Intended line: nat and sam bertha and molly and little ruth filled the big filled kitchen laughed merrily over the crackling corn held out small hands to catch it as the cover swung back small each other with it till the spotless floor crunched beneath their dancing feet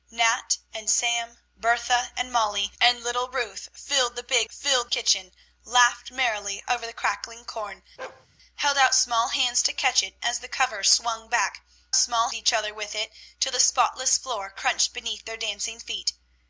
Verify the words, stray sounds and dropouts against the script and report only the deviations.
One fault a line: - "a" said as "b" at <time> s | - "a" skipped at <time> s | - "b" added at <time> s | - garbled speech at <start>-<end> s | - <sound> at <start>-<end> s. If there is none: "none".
- bark at 8.0-8.3 s